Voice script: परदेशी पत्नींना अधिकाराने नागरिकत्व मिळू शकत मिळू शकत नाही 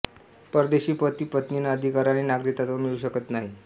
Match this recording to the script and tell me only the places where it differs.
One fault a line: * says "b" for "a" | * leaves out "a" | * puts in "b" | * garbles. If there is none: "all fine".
* puts in "पती"
* leaves out "मिळू शकत"